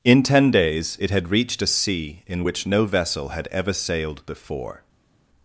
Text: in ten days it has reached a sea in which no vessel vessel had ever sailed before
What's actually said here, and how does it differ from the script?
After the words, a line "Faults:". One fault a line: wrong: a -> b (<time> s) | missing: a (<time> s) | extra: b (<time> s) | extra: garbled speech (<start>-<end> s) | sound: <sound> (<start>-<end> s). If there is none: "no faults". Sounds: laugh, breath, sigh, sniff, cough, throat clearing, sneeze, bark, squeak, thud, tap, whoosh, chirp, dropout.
in ten days it had reached a sea in which no vessel had ever sailed before
Faults:
wrong: has -> had (1.1 s)
missing: vessel (3.3 s)